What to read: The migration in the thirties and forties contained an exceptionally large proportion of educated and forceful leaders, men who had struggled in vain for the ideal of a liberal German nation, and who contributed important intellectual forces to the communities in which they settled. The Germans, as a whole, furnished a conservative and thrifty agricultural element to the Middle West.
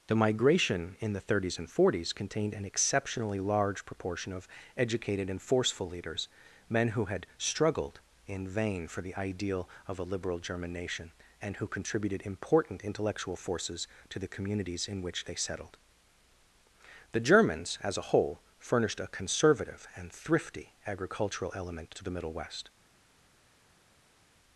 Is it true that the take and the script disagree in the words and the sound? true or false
false